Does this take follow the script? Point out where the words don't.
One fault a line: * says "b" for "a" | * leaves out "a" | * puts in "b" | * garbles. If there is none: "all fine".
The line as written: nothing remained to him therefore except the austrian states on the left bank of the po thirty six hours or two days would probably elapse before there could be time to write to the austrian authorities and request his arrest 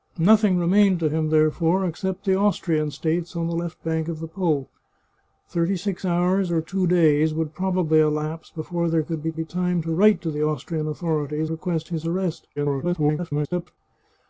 * puts in "be"
* leaves out "and"
* garbles